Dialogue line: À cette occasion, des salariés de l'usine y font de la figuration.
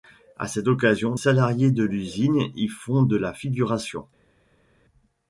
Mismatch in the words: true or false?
true